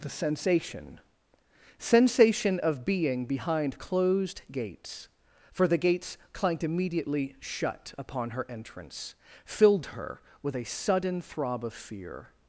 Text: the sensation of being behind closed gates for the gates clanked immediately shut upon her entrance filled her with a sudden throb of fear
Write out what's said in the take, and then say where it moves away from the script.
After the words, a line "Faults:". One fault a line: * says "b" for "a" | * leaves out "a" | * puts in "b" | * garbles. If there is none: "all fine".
the sensation sensation of being behind closed gates for the gates clanked immediately shut upon her entrance filled her with a sudden throb of fear
Faults:
* puts in "sensation"